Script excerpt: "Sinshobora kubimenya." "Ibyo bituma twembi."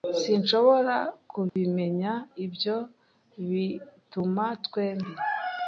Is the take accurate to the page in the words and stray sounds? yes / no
no